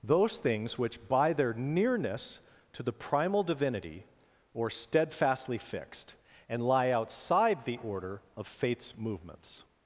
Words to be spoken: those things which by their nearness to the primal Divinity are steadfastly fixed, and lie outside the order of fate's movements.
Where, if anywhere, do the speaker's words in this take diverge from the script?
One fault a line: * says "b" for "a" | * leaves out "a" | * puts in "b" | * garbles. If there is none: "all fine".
* says "or" for "are"